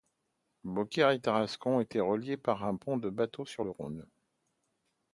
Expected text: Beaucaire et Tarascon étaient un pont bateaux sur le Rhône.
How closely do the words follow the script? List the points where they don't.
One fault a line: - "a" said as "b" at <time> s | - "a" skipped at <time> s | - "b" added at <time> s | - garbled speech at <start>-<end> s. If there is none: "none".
- "reliés par" added at 2.0 s
- "de" added at 3.0 s